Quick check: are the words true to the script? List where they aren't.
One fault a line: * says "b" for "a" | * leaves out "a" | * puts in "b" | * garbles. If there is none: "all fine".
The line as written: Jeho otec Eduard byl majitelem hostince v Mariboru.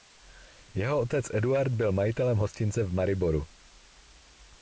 all fine